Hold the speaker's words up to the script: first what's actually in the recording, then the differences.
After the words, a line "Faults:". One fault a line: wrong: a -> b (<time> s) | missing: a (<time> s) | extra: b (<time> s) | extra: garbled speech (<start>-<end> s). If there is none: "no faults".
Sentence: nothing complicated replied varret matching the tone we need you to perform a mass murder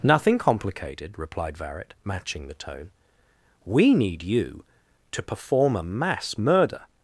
nothing complicated replied varret matching the tone we need you to perform a mass murder
Faults:
no faults